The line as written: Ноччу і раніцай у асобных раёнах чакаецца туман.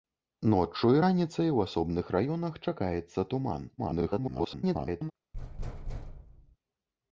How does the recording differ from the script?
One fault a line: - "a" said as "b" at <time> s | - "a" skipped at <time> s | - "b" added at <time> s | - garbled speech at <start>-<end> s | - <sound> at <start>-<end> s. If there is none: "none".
- garbled speech at 3.8-5.1 s
- thud at 5.3-6.6 s